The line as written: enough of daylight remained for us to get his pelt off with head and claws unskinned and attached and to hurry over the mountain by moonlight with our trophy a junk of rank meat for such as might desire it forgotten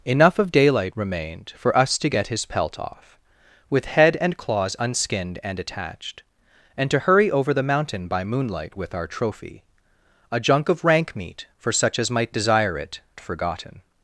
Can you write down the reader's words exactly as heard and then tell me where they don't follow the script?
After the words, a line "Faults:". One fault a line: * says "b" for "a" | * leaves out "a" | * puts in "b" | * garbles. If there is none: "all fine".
enough of daylight remained for us to get his pelt off with head and claws unskinned and attached and to hurry over the mountain by moonlight with our trophy a junk of rank meat for such as might desire it forgotten
Faults:
all fine